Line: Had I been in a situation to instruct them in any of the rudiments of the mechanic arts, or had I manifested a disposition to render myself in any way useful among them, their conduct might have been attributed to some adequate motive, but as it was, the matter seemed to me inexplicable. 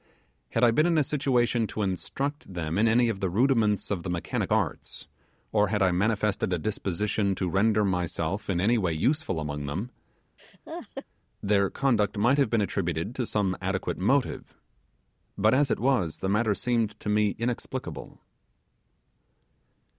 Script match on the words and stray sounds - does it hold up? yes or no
no